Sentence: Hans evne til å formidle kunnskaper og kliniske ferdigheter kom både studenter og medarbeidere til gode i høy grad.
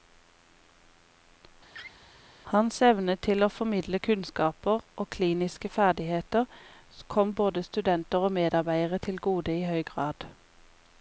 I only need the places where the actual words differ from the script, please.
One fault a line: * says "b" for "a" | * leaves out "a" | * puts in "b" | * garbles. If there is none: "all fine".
all fine